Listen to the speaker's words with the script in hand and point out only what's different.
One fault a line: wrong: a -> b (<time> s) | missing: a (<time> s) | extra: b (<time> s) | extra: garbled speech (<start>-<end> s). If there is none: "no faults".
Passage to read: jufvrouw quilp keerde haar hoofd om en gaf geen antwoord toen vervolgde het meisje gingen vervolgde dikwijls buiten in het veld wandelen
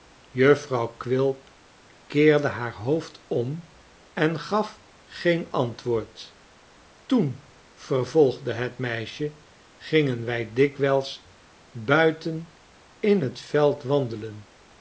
wrong: vervolgde -> wij (10.2 s)